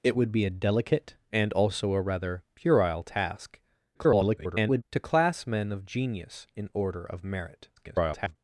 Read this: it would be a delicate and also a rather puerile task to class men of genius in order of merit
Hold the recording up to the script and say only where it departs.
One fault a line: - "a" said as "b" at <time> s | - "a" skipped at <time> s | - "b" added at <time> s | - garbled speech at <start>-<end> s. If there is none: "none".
- garbled speech at 3.9-4.8 s
- garbled speech at 7.8-8.4 s